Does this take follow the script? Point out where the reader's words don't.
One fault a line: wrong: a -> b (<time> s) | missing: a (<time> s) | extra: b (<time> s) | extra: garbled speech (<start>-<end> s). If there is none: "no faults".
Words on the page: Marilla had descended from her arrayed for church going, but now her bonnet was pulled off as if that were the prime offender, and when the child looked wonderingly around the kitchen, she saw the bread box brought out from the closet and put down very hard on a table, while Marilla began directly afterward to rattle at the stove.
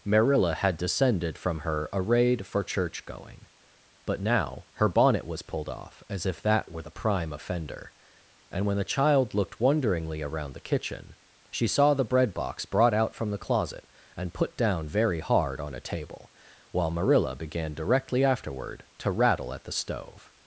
no faults